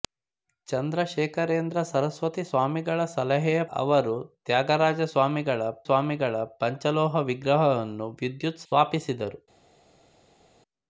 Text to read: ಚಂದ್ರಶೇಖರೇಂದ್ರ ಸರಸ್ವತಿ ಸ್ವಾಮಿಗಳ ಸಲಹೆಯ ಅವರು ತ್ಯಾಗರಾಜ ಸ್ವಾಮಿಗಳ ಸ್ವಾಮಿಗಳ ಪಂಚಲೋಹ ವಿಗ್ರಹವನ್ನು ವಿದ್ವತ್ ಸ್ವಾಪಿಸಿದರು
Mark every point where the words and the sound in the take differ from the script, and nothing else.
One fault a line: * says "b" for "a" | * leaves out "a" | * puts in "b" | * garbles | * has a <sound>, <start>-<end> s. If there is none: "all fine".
all fine